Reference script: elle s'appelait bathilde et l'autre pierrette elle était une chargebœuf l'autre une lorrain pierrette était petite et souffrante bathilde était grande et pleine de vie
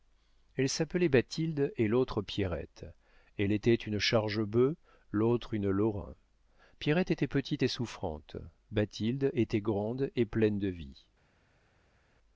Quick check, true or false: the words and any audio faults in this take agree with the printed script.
true